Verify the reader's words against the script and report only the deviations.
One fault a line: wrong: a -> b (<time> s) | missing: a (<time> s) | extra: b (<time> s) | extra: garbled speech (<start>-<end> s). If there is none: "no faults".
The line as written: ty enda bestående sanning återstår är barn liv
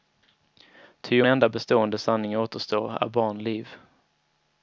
no faults